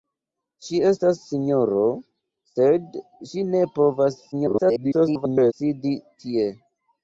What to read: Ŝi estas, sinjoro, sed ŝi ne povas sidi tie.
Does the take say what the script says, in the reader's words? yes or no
no